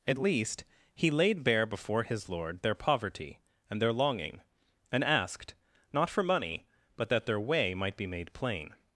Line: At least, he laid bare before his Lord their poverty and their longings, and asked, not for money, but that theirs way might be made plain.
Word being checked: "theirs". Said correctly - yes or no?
no